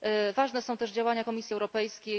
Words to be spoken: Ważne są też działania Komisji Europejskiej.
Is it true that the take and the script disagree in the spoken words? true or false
false